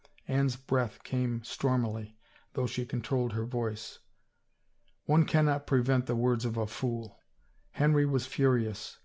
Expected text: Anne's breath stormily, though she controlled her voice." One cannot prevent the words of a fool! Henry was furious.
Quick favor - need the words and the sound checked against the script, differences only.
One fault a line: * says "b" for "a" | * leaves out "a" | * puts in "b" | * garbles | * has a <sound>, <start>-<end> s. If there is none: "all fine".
* puts in "came"